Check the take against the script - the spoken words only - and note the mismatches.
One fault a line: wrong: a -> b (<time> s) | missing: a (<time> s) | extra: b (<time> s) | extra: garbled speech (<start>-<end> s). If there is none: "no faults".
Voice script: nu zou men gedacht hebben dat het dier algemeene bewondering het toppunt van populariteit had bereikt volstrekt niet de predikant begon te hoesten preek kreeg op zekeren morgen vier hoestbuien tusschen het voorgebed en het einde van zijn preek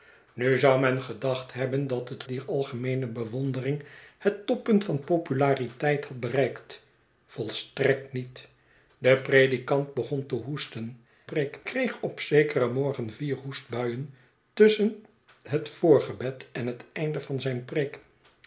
no faults